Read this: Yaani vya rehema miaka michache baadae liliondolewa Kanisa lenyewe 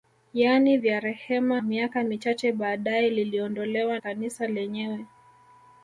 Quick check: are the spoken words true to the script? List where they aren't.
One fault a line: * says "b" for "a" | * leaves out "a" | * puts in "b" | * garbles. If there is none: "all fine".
all fine